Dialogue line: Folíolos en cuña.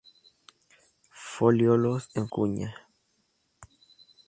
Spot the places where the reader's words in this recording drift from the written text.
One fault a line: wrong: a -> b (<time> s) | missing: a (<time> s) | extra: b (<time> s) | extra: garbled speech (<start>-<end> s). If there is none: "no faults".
no faults